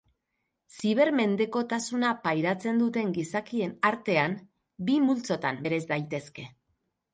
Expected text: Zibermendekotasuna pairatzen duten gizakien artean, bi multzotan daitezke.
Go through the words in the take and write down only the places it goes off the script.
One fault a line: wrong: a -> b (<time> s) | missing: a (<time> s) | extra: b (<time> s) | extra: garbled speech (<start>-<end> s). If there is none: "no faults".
extra: bereiz (5.7 s)